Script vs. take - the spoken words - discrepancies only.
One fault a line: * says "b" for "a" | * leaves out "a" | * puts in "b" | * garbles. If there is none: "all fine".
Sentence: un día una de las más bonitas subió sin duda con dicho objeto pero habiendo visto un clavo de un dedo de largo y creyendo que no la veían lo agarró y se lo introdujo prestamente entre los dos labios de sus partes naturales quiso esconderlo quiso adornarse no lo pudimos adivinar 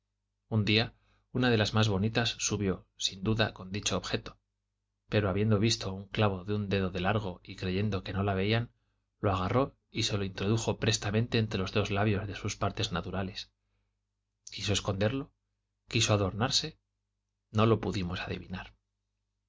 all fine